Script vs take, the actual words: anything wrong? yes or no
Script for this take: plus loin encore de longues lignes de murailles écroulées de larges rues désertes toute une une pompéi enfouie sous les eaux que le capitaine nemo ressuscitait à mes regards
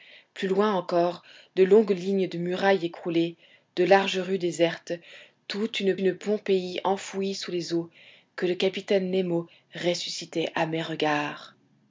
no